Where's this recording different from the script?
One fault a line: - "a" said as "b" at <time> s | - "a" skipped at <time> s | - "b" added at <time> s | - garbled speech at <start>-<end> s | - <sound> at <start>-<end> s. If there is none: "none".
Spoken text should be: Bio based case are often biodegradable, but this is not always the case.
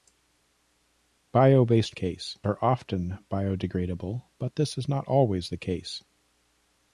none